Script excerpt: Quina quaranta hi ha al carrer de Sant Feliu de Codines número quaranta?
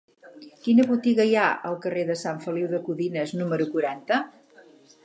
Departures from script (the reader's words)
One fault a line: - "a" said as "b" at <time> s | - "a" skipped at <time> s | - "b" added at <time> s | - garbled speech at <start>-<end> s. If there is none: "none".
- "quaranta" said as "botiga" at 0.9 s